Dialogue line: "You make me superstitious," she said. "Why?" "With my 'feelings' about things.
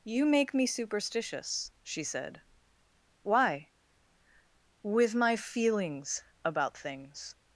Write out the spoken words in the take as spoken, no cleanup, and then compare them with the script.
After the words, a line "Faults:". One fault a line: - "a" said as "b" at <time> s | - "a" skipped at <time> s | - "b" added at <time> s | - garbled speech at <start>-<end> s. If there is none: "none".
"You make me superstitious," she said. "Why?" "With my 'feelings' about things.
Faults:
none